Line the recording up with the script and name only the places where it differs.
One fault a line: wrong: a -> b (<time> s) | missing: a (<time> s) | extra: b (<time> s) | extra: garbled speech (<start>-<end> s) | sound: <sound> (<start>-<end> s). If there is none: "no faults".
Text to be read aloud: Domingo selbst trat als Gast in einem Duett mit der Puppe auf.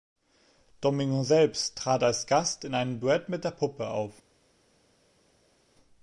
no faults